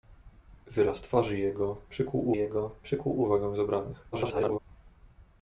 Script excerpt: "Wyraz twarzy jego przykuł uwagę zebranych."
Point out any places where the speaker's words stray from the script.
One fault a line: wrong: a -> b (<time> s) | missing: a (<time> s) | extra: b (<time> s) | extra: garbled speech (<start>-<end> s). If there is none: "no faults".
extra: jego przykuł (2.4 s)
extra: garbled speech (4.1-4.6 s)